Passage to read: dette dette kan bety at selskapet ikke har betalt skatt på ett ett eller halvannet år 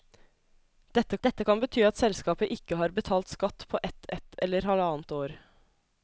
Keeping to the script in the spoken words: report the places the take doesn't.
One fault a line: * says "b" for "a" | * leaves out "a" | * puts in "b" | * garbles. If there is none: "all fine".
all fine